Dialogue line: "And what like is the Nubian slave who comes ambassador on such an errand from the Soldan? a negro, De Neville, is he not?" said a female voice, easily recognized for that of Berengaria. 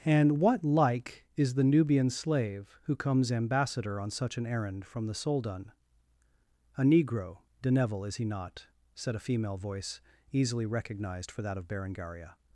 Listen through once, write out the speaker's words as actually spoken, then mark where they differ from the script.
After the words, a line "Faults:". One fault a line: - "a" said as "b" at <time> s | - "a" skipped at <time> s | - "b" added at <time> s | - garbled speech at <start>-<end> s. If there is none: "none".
"And what like is the Nubian slave who comes ambassador on such an errand from the Soldan? a negro, De Neville, is he not?" said a female voice, easily recognized for that of Berengaria.
Faults:
none